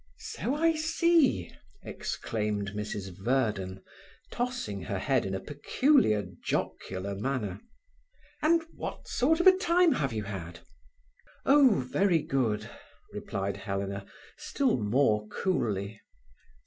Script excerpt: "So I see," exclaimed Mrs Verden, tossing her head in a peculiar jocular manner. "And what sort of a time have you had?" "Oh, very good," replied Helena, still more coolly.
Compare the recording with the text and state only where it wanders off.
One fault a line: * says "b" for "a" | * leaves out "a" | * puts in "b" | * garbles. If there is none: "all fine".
all fine